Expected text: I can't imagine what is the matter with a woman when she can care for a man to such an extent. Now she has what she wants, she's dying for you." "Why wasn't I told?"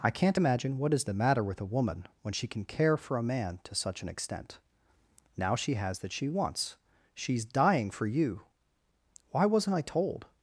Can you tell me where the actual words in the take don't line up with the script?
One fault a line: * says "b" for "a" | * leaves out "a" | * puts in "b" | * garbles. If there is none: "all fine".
* says "that" for "what"